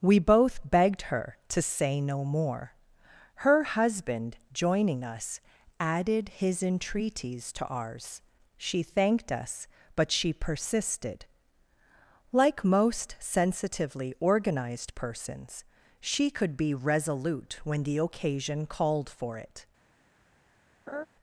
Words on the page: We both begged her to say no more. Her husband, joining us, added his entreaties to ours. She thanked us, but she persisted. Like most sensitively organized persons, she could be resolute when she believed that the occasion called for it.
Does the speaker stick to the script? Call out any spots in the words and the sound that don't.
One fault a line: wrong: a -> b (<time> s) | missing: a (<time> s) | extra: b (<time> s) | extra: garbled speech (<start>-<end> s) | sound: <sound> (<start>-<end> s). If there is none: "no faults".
missing: she believed that (17.8 s)
sound: laugh (20.9-21.1 s)